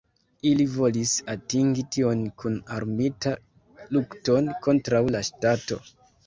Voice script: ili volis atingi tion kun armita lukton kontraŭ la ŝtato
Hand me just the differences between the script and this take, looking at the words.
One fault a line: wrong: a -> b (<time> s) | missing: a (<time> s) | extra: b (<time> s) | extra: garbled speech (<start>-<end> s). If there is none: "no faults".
no faults